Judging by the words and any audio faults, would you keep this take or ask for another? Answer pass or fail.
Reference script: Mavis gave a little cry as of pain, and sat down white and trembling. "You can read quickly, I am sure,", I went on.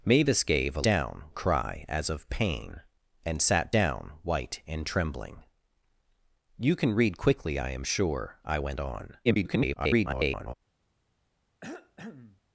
fail